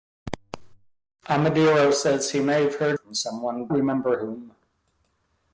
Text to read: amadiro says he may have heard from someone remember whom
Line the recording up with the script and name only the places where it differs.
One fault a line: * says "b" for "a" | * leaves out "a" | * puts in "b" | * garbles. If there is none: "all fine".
all fine